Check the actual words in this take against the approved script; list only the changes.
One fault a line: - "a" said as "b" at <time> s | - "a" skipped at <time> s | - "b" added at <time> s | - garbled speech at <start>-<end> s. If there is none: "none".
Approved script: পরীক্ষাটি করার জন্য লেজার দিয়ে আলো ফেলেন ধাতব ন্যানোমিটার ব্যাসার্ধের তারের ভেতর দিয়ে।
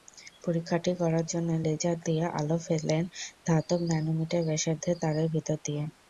none